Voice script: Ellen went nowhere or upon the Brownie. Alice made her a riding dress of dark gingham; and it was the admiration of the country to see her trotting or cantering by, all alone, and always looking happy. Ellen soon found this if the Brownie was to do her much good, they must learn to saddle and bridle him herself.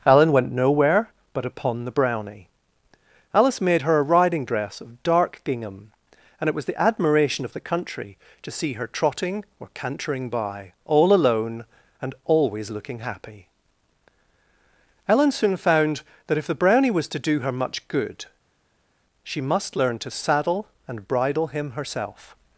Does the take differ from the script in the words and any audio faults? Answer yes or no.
yes